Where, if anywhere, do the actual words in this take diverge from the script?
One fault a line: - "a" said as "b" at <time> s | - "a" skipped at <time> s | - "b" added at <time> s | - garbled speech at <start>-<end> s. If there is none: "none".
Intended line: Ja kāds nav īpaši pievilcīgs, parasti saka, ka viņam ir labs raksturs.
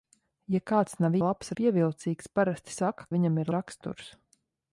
- "īpaši" said as "labs" at 1.2 s
- "ka" skipped at 3.1 s
- "labs" skipped at 3.5 s